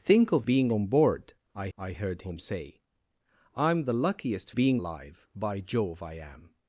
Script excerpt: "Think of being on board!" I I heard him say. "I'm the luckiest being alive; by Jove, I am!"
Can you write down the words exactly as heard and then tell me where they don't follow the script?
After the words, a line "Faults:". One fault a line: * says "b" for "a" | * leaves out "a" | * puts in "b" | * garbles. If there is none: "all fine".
"Think of being on board!" I I heard him say. "I'm the luckiest being alive; by Jove, I am!"
Faults:
all fine